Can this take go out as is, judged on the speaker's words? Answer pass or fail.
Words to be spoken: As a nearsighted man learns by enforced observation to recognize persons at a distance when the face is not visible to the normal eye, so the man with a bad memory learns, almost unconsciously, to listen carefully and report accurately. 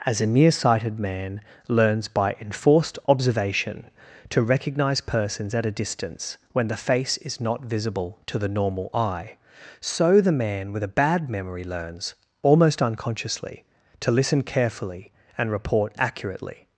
pass